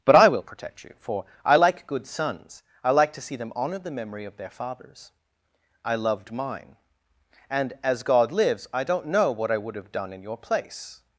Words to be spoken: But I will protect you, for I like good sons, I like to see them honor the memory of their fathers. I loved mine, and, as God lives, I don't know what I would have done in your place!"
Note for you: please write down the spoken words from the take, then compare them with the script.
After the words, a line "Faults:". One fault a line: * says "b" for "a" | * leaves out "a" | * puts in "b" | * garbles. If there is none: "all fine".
But I will protect you, for I like good sons, I like to see them honor the memory of their fathers. I loved mine, and, as God lives, I don't know what I would have done in your place!"
Faults:
all fine